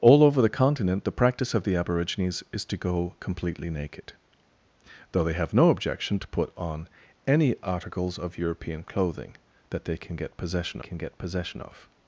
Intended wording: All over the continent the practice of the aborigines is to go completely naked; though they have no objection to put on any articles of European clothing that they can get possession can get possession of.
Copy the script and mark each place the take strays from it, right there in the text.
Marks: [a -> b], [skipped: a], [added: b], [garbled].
All over the continent the practice of the aborigines is to go completely naked; though they have no objection to put on any articles of European clothing that they can get possession can get possession of.